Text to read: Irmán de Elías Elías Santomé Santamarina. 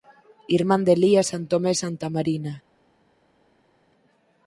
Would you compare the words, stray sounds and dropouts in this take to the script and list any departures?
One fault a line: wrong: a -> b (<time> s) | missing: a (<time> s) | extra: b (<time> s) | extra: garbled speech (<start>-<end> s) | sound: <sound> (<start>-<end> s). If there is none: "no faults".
missing: Elías (1.3 s)